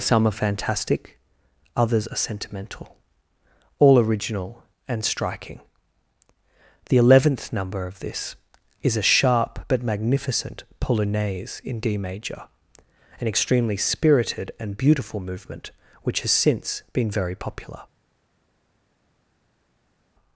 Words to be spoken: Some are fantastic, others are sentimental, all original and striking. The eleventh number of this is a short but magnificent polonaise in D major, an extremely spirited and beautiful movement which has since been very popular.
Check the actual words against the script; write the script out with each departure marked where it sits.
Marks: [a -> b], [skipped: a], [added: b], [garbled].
Some are fantastic, others are sentimental, all original and striking. The eleventh number of this is a [short -> sharp] but magnificent polonaise in D major, an extremely spirited and beautiful movement which has since been very popular.